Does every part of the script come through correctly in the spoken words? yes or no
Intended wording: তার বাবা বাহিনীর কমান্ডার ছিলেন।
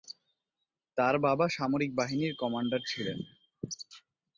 no